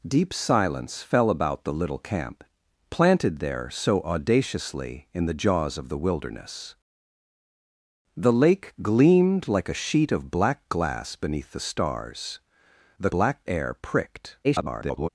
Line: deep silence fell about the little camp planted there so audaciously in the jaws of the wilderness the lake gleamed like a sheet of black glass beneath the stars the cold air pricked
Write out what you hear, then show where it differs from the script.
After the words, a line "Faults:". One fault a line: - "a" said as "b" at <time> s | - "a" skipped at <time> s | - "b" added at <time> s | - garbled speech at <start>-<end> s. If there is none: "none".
deep silence fell about the little camp planted there so audaciously in the jaws of the wilderness the lake gleamed like a sheet of black glass beneath the stars the black air pricked [garbled]
Faults:
- "cold" said as "black" at 13.1 s
- garbled speech at 14.4-15.1 s